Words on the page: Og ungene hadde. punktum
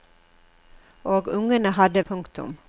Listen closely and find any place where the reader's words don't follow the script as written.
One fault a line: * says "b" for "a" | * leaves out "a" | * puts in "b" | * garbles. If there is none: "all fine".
all fine